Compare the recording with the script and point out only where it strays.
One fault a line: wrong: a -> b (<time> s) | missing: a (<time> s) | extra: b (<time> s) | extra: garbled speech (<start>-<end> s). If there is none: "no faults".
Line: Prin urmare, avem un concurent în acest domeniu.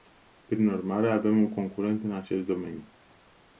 no faults